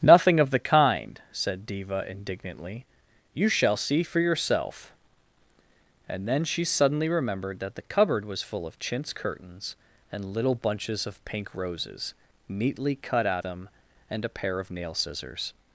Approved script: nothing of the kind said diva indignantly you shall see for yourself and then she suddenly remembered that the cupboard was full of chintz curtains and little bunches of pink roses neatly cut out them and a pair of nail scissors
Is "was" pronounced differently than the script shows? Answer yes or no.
no